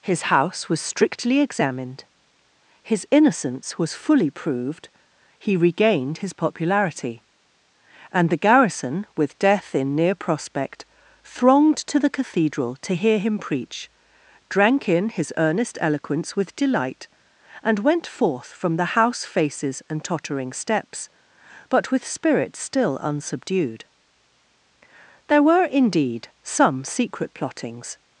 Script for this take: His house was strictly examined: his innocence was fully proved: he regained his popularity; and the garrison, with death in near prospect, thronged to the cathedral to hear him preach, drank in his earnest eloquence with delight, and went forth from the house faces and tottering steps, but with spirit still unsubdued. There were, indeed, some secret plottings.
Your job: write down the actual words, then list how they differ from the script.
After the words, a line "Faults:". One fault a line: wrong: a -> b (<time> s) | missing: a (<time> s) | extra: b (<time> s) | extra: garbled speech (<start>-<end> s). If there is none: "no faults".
His house was strictly examined: his innocence was fully proved: he regained his popularity; and the garrison, with death in near prospect, thronged to the cathedral to hear him preach, drank in his earnest eloquence with delight, and went forth from the house faces and tottering steps, but with spirit still unsubdued. There were, indeed, some secret plottings.
Faults:
no faults